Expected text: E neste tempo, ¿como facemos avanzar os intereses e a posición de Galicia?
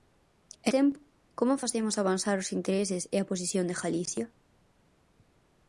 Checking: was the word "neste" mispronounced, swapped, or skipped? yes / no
yes